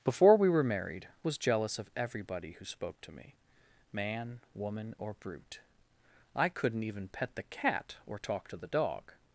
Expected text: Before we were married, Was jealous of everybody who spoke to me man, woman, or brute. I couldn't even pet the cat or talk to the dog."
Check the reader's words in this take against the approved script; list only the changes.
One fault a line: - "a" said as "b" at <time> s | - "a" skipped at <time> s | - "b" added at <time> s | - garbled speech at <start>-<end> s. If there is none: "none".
none